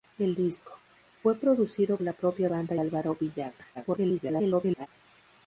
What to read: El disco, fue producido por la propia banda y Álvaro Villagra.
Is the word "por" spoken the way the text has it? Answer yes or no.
no